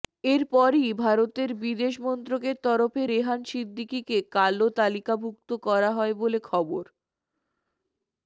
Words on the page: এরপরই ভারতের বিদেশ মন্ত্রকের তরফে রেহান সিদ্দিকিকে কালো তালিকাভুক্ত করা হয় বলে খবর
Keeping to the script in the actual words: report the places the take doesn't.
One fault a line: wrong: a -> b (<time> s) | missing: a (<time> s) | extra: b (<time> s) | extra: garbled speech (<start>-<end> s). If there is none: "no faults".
no faults